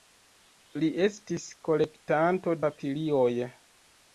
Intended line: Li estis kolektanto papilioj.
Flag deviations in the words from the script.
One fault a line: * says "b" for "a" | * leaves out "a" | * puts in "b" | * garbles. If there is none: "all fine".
all fine